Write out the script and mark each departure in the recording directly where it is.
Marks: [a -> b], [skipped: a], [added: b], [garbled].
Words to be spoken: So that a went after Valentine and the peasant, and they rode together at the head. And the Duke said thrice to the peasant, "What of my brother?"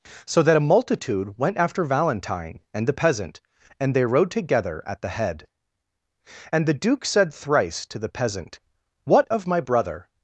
So that a [added: multitude] went after Valentine and the peasant, and they rode together at the head. And the Duke said thrice to the peasant, "What of my brother?"